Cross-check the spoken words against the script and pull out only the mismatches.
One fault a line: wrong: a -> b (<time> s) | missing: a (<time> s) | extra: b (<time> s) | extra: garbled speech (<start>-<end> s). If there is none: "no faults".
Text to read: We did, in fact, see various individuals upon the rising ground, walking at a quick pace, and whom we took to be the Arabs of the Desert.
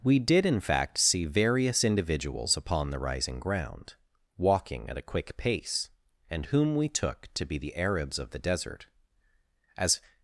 extra: As (9.8 s)